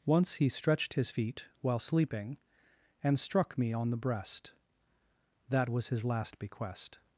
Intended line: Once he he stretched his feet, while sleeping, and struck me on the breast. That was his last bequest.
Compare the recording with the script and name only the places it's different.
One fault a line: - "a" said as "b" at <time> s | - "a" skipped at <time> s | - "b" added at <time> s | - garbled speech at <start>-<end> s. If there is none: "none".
- "he" skipped at 0.5 s